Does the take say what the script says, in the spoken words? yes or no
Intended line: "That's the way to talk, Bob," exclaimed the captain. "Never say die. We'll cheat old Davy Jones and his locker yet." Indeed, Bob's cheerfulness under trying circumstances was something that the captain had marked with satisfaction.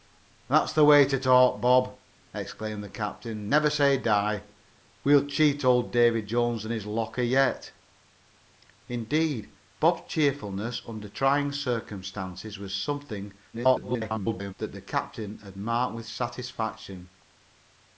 no